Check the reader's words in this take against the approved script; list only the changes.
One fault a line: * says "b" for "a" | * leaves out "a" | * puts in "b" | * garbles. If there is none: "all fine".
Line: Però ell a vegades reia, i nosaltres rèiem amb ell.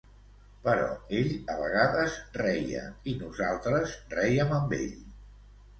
all fine